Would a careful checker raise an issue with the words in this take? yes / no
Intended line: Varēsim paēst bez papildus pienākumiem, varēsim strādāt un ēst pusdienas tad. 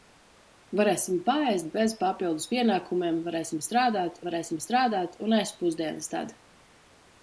yes